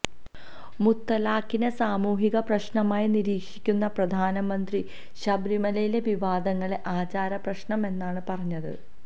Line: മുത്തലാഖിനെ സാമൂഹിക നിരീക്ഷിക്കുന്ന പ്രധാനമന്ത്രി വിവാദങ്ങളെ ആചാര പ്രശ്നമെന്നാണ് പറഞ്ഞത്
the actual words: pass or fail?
fail